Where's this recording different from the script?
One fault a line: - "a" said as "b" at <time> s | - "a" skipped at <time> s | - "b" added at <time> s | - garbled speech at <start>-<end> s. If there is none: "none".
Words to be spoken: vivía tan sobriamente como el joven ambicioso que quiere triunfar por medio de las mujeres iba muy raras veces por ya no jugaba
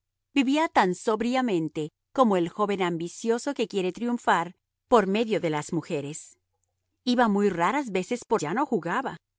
none